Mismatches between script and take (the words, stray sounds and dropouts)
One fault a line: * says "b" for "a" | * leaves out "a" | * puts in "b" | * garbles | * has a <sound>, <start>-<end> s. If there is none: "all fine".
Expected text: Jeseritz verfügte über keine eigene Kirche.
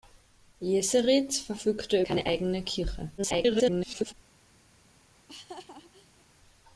* leaves out "über"
* garbles
* has a laugh, 5.1-6.2 s